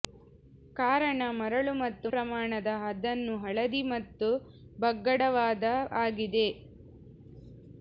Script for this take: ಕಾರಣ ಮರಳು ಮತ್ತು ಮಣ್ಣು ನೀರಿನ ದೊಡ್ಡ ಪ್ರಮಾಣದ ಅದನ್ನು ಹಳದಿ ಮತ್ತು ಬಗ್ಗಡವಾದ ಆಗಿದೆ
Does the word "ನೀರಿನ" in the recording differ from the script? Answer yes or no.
yes